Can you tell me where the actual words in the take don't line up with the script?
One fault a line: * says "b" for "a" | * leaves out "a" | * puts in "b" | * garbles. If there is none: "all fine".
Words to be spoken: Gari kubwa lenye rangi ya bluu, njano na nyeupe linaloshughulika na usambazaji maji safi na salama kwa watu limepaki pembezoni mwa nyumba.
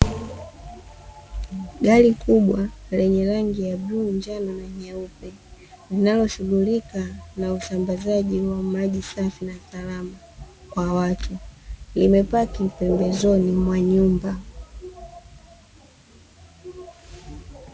* puts in "wa"